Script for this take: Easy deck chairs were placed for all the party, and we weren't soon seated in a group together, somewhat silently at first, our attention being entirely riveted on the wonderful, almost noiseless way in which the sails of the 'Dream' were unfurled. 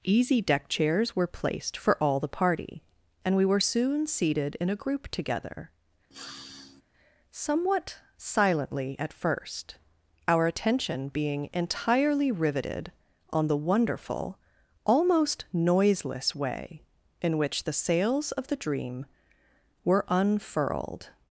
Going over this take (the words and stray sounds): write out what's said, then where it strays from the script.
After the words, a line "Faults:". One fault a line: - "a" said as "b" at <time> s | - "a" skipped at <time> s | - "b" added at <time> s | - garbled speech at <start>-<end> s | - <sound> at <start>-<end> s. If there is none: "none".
Easy deck chairs were placed for all the party, and we were soon seated in a group together, somewhat silently at first, our attention being entirely riveted on the wonderful, almost noiseless way in which the sails of the 'Dream' were unfurled.
Faults:
- "weren't" said as "were" at 3.5 s
- sniff at 6.1-6.8 s